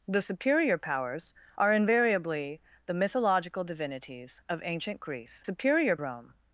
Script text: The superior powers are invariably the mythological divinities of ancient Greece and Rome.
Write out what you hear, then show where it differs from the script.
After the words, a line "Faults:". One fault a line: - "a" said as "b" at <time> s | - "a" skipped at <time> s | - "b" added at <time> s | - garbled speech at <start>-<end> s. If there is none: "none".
The superior powers are invariably the mythological divinities of ancient Greece superior Rome.
Faults:
- "and" said as "superior" at 5.4 s